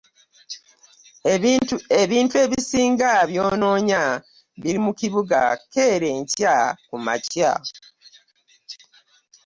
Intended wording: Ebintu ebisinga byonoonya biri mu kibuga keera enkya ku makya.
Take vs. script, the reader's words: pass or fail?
pass